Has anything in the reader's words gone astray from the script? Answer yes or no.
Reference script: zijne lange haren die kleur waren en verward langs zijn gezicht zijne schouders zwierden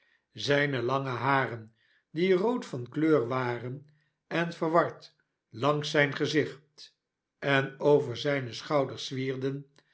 yes